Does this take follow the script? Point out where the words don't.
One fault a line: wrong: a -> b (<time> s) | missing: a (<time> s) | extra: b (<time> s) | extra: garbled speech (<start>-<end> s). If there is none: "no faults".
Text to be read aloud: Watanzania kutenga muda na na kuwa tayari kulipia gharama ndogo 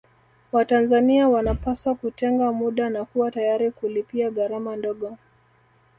extra: wanapaswa (1.3 s)
missing: na (3.0 s)